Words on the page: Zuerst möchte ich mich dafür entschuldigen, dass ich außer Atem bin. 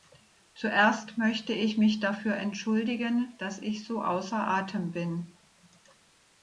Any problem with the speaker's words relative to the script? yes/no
yes